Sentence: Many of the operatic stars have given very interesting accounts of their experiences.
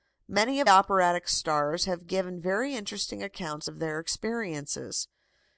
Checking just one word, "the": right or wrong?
wrong